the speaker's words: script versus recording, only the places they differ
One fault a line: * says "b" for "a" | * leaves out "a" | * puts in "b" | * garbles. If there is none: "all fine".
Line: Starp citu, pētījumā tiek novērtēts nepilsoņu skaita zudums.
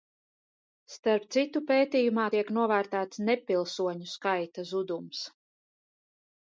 all fine